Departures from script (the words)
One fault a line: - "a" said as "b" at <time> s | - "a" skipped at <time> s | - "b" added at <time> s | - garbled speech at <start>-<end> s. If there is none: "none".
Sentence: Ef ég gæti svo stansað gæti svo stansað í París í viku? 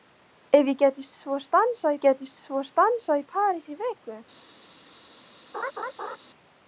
none